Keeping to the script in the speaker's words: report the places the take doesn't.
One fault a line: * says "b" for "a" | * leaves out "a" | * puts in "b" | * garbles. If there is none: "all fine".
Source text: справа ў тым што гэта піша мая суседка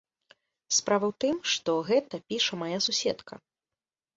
all fine